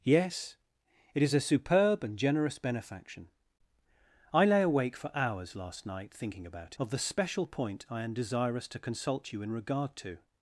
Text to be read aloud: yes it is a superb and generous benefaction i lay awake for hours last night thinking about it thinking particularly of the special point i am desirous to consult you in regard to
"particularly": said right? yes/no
no